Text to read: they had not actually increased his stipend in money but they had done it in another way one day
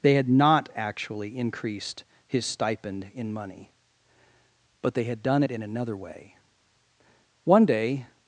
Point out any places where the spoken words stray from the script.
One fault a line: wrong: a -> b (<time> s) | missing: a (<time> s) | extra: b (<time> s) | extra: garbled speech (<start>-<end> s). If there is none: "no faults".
no faults